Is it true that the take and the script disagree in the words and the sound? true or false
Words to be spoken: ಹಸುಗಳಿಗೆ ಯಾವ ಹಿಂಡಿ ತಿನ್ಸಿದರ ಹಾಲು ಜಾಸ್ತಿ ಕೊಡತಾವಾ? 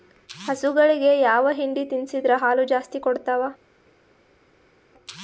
false